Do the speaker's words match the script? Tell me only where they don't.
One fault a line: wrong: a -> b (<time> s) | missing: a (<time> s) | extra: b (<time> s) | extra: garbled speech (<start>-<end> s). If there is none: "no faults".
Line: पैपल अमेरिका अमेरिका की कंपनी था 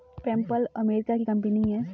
missing: अमेरिका (1.2 s)
wrong: था -> है (1.7 s)